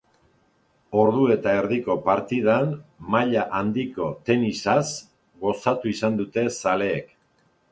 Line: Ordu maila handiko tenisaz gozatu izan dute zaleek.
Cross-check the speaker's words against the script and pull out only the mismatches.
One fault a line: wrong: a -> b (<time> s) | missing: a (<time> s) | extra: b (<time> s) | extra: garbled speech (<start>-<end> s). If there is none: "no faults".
extra: eta erdiko partidan (1.3 s)